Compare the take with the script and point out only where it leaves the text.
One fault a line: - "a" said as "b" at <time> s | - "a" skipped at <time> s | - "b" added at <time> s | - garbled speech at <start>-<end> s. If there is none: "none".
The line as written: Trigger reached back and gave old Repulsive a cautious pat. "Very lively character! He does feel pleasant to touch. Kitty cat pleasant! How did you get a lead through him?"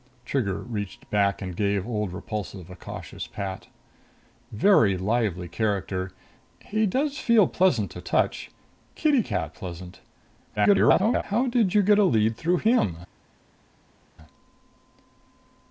- garbled speech at 10.6-11.2 s